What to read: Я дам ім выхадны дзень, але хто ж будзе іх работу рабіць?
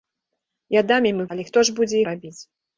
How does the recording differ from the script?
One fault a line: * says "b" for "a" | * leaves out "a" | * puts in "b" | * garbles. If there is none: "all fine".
* leaves out "выхадны дзень"
* leaves out "іх работу"